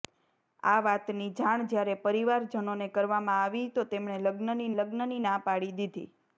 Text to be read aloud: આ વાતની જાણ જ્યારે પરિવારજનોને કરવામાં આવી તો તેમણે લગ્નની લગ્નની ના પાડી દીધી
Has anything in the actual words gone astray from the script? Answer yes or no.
no